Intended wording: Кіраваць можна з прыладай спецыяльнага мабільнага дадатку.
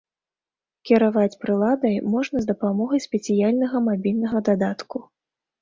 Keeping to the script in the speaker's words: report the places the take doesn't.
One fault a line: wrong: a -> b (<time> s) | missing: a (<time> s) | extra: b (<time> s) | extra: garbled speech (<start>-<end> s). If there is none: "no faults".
extra: прыладай (1.4 s)
wrong: прыладай -> дапамогай (2.5 s)